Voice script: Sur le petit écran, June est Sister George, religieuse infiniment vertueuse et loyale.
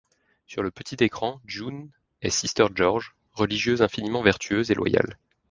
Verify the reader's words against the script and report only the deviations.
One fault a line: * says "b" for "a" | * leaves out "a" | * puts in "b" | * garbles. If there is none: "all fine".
all fine